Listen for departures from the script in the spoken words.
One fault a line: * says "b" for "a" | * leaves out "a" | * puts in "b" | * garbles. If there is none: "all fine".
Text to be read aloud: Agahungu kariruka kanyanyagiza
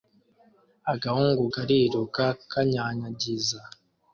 all fine